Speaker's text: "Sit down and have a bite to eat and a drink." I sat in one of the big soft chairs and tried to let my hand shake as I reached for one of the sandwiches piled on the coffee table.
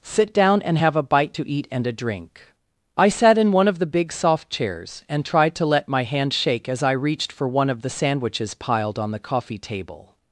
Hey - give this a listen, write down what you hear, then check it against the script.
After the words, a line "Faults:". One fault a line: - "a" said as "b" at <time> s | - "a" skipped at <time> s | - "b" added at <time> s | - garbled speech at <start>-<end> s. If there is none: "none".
"Sit down and have a bite to eat and a drink." I sat in one of the big soft chairs and tried to let my hand shake as I reached for one of the sandwiches piled on the coffee table.
Faults:
none